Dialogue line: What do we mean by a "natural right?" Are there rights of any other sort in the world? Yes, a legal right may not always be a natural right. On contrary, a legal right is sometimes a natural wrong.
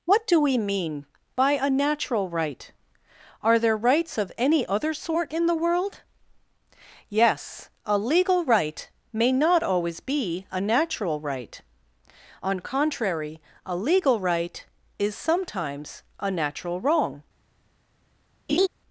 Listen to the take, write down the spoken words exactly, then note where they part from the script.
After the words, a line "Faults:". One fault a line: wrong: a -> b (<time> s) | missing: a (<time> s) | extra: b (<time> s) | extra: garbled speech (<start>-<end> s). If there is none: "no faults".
What do we mean by a "natural right?" Are there rights of any other sort in the world? Yes, a legal right may not always be a natural right. On contrary, a legal right is sometimes a natural wrong.
Faults:
no faults